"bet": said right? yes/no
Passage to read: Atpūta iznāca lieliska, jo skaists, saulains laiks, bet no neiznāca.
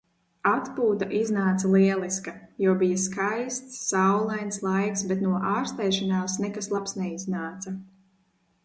yes